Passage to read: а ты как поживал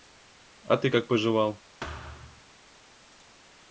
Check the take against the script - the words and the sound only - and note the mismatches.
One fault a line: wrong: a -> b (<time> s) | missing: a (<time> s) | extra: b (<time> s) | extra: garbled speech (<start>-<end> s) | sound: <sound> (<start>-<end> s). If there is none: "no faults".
sound: thud (1.8-2.4 s)